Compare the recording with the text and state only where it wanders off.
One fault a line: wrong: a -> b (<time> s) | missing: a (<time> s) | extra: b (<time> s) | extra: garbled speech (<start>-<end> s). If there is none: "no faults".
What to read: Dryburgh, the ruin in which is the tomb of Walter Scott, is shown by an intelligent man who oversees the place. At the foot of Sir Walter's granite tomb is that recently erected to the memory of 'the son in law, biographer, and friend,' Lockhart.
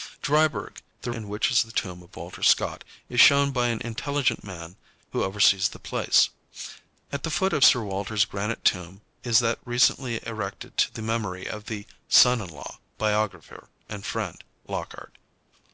missing: ruin (1.1 s)